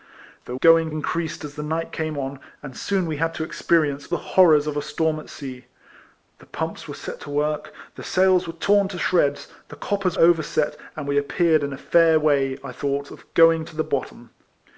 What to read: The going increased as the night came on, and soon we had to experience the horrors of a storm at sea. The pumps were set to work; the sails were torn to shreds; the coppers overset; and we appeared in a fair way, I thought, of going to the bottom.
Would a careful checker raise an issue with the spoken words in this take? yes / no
no